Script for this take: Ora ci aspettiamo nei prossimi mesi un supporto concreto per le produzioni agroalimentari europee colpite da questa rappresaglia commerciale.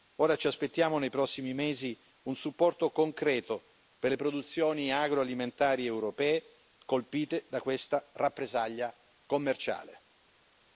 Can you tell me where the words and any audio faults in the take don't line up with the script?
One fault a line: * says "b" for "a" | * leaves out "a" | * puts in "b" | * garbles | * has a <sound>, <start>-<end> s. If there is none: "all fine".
all fine